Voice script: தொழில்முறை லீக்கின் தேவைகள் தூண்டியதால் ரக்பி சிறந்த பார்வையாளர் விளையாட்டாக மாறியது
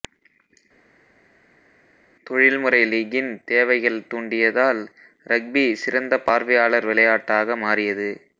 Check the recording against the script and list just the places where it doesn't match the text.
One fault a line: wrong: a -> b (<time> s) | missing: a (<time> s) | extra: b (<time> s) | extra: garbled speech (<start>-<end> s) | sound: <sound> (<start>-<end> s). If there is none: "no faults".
no faults